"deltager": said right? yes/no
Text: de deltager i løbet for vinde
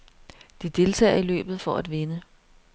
yes